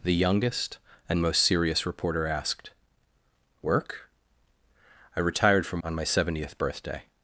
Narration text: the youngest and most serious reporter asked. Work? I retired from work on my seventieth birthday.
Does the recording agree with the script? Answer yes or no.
no